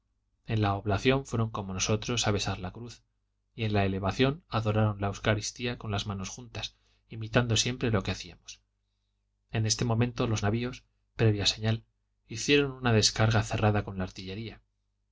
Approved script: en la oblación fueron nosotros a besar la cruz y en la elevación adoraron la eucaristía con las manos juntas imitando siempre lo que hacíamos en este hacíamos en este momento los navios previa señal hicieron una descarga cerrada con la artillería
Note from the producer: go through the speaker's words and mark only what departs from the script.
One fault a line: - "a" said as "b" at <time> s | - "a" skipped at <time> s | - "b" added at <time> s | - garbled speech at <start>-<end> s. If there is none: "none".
- "como" added at 1.5 s
- "hacíamos en este" skipped at 9.9 s